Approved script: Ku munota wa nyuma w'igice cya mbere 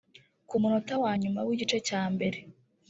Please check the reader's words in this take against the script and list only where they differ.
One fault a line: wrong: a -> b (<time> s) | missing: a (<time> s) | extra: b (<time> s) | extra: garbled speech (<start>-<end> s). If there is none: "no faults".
no faults